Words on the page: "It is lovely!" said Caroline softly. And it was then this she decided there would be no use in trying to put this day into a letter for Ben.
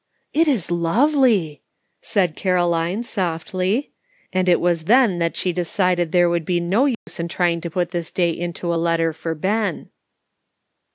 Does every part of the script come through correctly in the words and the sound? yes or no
no